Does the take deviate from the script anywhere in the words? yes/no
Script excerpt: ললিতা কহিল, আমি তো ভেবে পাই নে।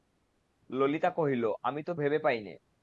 no